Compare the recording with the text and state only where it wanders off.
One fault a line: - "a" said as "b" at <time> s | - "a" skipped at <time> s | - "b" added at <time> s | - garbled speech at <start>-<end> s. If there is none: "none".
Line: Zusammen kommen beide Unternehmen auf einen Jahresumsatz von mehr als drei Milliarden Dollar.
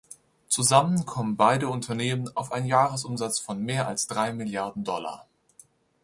none